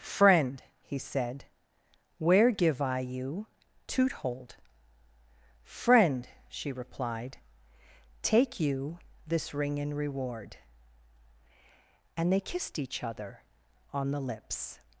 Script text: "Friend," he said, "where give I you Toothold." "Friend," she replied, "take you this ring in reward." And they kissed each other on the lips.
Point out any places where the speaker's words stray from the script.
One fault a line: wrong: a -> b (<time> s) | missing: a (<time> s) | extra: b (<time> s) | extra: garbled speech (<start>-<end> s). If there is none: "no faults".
no faults